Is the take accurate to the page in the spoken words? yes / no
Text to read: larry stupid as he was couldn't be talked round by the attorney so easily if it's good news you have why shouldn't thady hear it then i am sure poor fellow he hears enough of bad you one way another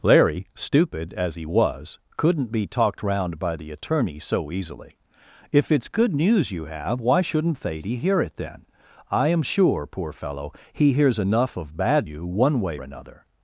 yes